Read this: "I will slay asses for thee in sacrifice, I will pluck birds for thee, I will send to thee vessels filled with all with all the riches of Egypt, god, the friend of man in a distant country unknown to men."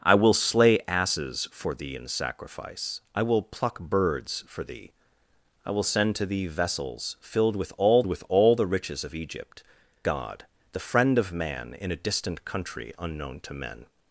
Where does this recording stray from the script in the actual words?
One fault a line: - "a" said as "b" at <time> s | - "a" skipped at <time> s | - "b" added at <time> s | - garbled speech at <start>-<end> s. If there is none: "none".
none